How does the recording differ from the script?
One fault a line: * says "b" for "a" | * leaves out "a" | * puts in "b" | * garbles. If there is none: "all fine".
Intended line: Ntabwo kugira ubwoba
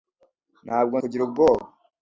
all fine